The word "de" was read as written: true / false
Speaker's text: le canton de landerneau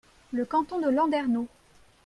true